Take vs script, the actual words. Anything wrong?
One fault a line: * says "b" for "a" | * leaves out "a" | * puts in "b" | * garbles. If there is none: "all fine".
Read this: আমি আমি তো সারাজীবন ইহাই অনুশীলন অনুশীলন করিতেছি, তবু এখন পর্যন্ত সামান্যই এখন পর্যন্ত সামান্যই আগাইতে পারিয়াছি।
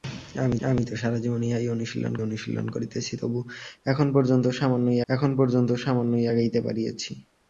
all fine